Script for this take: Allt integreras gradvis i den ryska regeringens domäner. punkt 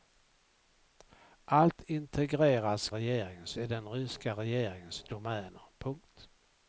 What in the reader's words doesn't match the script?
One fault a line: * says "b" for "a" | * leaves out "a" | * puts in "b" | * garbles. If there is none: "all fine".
* says "regeringens" for "gradvis"